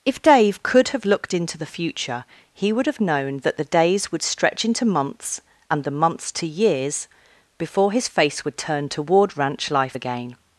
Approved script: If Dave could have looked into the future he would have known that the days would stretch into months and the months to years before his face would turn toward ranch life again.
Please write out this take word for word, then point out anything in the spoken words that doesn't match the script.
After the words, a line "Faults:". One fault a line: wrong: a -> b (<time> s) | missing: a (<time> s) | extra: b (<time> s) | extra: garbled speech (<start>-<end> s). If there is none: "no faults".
If Dave could have looked into the future he would have known that the days would stretch into months and the months to years before his face would turn toward ranch life again.
Faults:
no faults